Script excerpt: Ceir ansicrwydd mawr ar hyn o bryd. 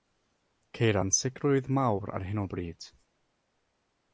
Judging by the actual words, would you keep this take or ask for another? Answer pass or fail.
pass